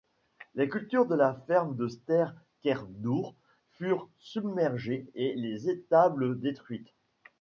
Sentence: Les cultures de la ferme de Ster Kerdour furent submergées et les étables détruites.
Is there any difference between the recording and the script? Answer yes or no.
no